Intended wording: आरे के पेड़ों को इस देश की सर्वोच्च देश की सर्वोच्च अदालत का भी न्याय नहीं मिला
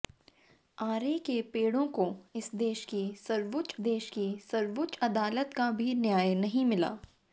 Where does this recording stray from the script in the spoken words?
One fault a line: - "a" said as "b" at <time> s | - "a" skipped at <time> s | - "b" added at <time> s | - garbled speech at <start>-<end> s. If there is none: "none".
none